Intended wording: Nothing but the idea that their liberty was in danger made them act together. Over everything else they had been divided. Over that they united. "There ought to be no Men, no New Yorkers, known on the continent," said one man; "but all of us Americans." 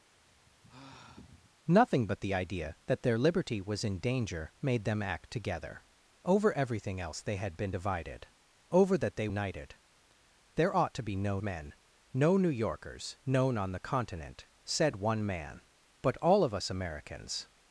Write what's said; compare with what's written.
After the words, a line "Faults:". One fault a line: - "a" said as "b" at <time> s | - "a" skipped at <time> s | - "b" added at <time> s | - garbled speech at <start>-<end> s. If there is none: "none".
Nothing but the idea that their liberty was in danger made them act together. Over everything else they had been divided. Over that they united. "There ought to be no Men, no New Yorkers, known on the continent," said one man; "but all of us Americans."
Faults:
none